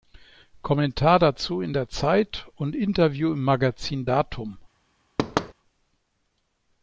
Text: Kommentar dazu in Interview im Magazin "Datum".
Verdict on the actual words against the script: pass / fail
fail